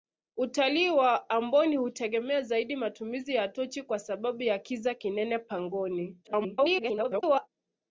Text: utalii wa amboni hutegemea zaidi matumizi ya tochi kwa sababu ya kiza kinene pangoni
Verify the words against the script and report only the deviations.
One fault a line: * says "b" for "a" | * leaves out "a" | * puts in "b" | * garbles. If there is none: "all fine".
* garbles